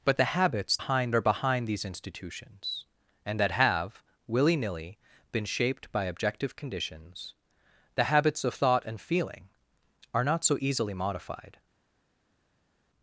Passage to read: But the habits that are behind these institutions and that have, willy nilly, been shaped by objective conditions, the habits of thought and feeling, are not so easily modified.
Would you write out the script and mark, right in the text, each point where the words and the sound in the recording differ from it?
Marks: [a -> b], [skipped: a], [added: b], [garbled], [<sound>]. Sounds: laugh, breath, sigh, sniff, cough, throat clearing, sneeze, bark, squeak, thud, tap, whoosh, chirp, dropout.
But the habits [that -> behind] are behind these institutions and that have, willy nilly, been shaped by objective conditions, the habits of thought and feeling, are not so easily modified.